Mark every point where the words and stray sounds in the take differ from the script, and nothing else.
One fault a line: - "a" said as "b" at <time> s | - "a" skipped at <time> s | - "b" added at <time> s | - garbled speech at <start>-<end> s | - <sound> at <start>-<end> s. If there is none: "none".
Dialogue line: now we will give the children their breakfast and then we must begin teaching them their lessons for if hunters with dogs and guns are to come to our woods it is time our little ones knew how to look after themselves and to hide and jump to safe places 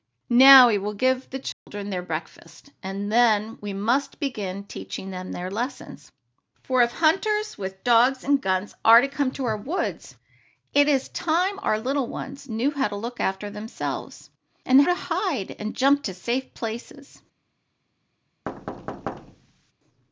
- dropout at 1.5-1.7 s
- thud at 18.5-19.7 s